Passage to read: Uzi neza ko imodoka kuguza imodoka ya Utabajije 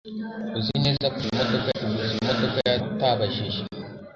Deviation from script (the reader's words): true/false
false